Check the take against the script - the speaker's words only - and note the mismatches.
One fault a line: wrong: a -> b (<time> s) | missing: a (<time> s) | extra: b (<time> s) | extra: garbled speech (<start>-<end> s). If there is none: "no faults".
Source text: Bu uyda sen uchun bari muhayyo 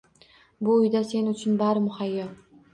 no faults